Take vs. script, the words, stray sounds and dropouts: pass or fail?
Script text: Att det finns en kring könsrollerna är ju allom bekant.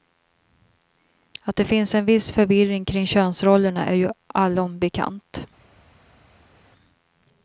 fail